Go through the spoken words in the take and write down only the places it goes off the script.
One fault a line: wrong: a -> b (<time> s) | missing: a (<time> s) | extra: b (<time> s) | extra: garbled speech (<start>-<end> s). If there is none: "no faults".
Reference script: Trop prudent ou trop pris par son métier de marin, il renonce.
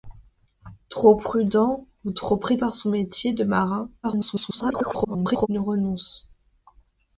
extra: garbled speech (4.0-5.5 s)